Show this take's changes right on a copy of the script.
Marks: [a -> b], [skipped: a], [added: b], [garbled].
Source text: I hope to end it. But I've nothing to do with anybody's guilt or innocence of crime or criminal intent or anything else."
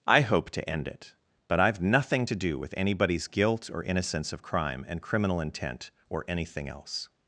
I hope to end it. But I've nothing to do with anybody's guilt or innocence of crime [or -> and] criminal intent or anything else."